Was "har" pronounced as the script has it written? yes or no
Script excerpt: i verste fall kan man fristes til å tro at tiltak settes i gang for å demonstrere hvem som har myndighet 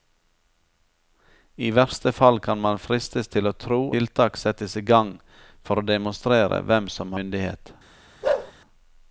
no